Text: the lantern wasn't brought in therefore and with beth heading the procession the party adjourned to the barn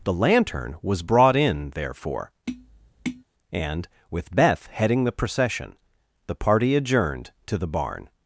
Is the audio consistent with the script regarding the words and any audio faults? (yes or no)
no